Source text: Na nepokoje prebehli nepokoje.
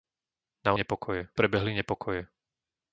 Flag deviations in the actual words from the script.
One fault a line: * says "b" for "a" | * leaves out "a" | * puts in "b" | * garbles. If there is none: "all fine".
all fine